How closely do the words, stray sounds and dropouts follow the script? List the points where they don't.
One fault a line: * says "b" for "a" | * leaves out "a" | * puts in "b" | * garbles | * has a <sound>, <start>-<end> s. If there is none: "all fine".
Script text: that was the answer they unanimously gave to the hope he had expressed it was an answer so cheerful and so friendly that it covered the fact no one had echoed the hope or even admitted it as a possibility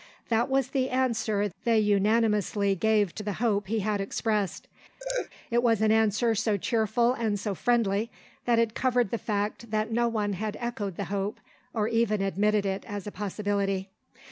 * has a laugh, 5.0-5.3 s
* puts in "that"